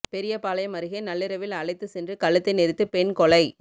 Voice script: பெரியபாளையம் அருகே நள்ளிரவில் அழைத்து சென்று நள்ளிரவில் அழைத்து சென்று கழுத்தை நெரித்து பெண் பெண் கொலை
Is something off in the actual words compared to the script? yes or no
yes